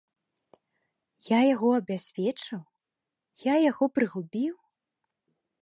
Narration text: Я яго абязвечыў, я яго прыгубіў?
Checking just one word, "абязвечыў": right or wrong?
right